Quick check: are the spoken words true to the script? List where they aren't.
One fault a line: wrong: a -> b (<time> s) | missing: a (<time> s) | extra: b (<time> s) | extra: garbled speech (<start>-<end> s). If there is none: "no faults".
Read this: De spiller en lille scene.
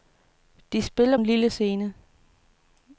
no faults